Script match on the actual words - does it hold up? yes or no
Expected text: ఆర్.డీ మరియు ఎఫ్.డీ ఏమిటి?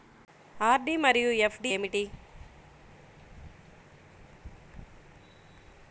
yes